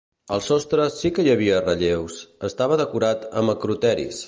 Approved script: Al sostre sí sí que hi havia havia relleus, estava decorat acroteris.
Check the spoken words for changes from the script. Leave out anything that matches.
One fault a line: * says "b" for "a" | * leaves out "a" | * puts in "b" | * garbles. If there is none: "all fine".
* leaves out "sí"
* leaves out "havia"
* puts in "amb"